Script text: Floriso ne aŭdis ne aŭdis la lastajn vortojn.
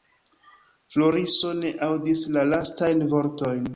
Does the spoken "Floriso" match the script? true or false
true